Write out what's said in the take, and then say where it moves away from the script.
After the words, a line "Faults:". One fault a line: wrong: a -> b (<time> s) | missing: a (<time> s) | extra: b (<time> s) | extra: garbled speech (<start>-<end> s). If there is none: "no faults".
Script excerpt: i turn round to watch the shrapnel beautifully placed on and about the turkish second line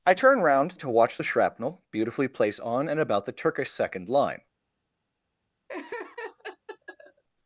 i turn round to watch the shrapnel beautifully place on and about the turkish second line
Faults:
wrong: placed -> place (2.3 s)